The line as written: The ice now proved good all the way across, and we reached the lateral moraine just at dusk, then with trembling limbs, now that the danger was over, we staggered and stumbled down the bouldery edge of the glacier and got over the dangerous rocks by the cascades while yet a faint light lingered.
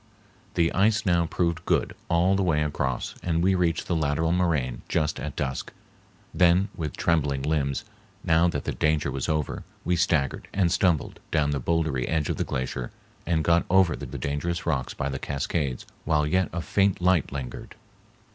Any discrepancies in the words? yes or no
yes